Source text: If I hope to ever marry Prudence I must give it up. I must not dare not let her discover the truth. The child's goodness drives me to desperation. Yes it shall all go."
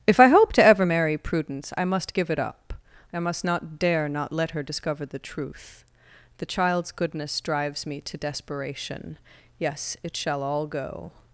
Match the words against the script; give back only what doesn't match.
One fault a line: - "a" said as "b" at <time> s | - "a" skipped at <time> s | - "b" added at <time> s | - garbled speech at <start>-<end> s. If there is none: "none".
none